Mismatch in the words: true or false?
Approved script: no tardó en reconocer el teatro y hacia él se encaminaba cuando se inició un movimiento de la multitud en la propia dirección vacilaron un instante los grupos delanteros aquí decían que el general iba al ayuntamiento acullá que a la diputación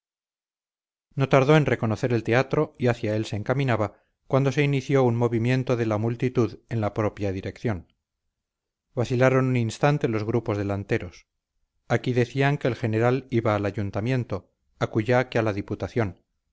false